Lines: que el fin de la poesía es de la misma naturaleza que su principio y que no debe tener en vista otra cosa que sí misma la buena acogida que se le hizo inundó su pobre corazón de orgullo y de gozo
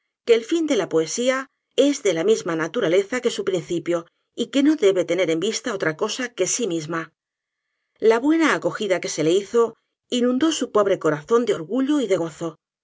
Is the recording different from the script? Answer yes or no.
no